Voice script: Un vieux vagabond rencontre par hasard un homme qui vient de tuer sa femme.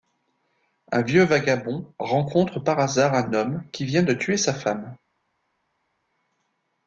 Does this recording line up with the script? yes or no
yes